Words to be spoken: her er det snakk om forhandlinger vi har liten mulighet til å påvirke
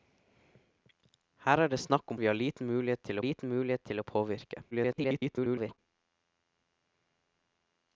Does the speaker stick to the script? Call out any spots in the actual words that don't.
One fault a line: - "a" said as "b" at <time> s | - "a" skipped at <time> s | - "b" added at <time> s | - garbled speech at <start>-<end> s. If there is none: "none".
- "forhandlinger" skipped at 2.2 s
- "liten mulighet til" added at 3.2 s
- garbled speech at 4.7-5.8 s